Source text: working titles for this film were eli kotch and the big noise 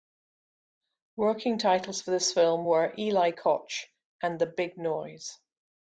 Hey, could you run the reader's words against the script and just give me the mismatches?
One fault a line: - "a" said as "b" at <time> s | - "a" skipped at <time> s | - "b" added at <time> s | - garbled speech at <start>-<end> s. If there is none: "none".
none